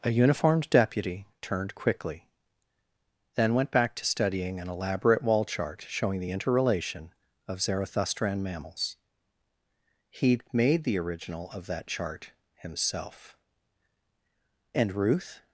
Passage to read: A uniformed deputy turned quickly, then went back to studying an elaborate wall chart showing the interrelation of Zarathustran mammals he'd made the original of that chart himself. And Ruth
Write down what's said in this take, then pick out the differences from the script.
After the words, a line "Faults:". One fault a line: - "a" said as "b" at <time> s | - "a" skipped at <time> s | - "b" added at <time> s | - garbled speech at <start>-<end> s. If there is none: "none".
A uniformed deputy turned quickly, then went back to studying an elaborate wall chart showing the interrelation of Zarathustran mammals he'd made the original of that chart himself. And Ruth
Faults:
none